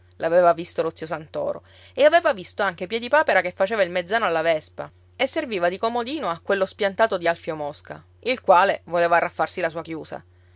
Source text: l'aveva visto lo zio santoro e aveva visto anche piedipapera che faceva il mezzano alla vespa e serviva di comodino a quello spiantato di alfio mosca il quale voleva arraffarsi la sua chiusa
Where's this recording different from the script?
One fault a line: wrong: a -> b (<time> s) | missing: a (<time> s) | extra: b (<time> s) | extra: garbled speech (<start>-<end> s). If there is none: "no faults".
no faults